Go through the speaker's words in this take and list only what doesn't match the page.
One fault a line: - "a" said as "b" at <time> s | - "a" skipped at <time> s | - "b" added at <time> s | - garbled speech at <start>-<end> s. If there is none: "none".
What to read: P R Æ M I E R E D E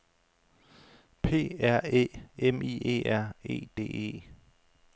none